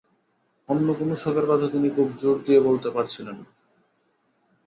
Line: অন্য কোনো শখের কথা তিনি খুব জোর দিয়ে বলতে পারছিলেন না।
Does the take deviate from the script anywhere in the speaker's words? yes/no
no